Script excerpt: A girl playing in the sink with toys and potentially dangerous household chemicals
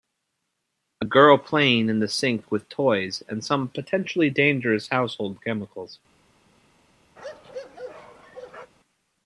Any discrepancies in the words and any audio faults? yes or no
yes